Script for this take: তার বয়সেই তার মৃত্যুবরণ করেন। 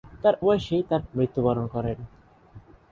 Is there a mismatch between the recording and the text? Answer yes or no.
no